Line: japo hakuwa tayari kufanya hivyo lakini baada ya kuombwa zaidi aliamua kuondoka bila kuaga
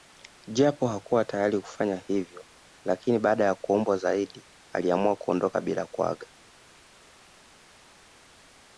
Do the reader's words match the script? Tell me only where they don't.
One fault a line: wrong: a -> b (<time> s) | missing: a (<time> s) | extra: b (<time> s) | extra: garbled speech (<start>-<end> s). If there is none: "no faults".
no faults